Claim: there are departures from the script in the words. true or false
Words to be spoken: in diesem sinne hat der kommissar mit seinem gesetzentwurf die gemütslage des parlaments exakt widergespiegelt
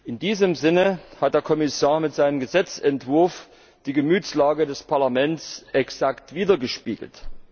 false